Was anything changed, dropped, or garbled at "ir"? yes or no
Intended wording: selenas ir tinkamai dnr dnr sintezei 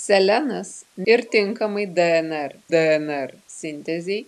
no